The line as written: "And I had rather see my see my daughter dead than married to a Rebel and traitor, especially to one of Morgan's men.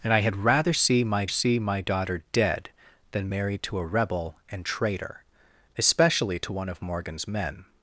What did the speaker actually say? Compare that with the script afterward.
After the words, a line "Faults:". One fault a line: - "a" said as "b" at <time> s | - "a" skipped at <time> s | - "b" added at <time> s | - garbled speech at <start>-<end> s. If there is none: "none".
"And I had rather see my see my daughter dead than married to a Rebel and traitor, especially to one of Morgan's men.
Faults:
none